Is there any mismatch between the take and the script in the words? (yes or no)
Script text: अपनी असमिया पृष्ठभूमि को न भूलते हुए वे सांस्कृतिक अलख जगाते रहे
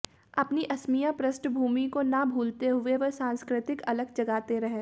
no